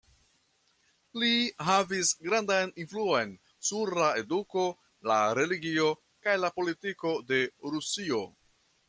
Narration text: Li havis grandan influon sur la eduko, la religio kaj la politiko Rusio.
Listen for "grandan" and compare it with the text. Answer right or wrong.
right